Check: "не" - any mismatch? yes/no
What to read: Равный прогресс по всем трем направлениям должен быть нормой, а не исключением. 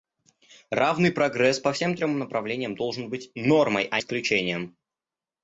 yes